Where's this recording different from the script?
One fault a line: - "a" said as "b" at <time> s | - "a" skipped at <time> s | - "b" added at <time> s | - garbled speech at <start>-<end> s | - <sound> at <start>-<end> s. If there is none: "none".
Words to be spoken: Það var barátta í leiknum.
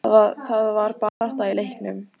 - dropout at 1.1-1.2 s